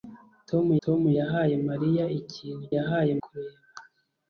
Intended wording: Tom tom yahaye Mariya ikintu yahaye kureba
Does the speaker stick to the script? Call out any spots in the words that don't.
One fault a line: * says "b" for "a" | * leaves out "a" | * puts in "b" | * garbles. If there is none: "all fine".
all fine